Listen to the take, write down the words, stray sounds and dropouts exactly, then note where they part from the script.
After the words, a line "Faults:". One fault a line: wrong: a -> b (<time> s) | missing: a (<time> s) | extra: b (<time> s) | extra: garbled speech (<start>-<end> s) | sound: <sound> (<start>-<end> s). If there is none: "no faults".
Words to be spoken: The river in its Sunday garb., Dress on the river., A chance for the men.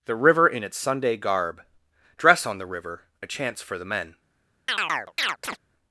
The river in its Sunday garb., Dress on the river., A chance for the men.
Faults:
sound: chirp (4.7-5.6 s)